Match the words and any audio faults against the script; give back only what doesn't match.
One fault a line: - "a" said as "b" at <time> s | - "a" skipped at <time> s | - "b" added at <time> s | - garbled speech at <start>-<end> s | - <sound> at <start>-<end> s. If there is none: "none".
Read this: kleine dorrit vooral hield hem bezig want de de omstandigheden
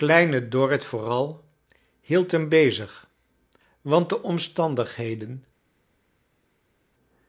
- "de" skipped at 4.2 s